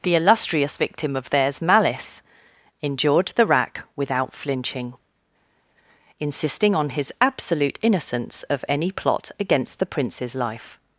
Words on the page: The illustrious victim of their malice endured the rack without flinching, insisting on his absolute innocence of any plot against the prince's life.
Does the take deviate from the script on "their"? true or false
true